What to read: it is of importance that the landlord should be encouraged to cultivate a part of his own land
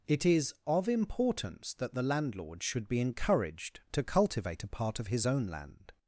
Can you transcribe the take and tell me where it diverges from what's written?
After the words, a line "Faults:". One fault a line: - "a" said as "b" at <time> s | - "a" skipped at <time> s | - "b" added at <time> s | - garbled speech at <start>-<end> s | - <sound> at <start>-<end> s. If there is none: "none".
it is of importance that the landlord should be encouraged to cultivate a part of his own land
Faults:
none